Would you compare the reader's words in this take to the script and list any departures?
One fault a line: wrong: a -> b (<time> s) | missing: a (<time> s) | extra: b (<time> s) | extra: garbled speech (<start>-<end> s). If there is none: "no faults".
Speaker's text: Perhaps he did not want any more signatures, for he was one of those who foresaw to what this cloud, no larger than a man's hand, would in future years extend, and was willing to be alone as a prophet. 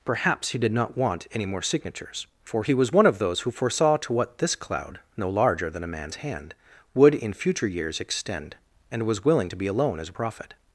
no faults